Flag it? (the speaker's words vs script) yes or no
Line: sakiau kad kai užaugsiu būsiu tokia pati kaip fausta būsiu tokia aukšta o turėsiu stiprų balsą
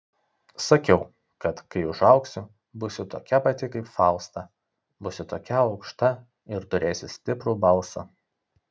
yes